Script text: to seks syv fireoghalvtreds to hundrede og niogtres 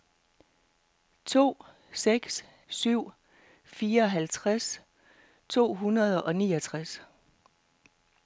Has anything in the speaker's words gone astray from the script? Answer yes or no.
no